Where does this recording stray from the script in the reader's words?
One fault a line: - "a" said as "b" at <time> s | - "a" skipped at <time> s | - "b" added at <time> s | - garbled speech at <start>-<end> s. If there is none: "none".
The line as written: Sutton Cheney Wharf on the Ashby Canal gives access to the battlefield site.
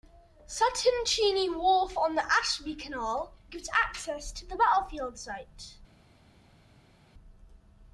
none